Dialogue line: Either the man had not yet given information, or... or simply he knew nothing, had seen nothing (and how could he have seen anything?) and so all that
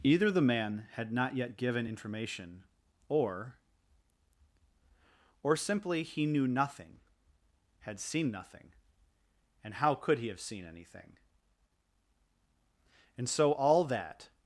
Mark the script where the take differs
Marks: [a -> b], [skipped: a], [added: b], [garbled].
Either the man had not yet given information, or... or simply he knew nothing, had seen nothing (and how could he have seen anything?) and so all that